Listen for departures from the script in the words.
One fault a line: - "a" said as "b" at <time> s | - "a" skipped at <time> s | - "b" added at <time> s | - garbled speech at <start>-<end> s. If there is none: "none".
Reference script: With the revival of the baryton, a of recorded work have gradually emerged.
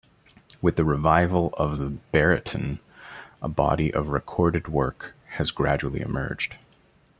- "body" added at 3.5 s
- "have" said as "has" at 5.3 s